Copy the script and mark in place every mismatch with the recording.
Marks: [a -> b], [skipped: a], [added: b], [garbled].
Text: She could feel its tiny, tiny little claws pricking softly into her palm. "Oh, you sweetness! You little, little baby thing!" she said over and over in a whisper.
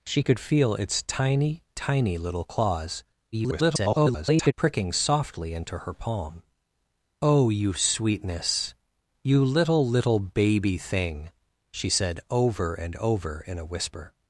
She could feel its tiny, tiny little claws [garbled] pricking softly into her palm. "Oh, you sweetness! You little, little baby thing!" she said over and over in a whisper.